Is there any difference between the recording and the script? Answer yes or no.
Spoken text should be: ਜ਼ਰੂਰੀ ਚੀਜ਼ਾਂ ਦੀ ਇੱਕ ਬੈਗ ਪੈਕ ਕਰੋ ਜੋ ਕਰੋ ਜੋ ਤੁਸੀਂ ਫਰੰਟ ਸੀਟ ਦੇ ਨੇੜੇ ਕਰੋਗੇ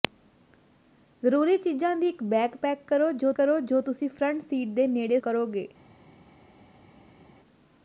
no